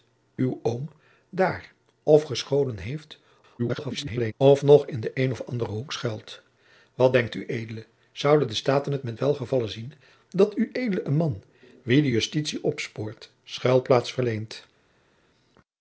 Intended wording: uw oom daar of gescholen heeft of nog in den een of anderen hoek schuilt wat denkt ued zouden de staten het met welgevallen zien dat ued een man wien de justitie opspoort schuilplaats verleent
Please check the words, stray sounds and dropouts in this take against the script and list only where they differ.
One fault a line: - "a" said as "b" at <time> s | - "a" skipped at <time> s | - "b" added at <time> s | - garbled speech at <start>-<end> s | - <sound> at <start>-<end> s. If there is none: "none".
- garbled speech at 3.6-4.3 s